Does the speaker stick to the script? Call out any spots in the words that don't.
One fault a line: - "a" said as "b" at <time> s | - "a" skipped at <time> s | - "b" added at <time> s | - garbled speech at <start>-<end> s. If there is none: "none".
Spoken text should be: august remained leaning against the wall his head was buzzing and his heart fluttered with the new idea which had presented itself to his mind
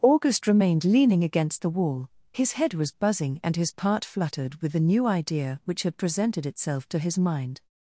- "heart" said as "part" at 3.7 s